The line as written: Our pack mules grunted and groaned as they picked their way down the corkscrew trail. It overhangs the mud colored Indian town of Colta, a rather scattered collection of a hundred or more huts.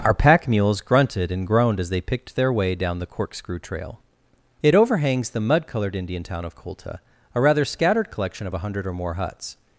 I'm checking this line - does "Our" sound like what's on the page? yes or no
yes